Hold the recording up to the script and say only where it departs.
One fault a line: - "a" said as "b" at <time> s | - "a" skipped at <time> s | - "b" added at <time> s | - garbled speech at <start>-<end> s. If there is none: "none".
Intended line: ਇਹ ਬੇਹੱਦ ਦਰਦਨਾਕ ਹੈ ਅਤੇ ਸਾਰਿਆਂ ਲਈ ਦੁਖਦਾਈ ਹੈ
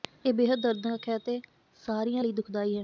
none